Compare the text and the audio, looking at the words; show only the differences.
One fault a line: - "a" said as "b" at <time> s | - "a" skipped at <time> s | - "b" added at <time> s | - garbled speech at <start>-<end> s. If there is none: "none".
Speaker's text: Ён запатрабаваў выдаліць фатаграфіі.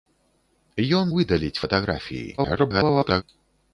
- "запатрабаваў" skipped at 1.1 s
- garbled speech at 2.4-3.2 s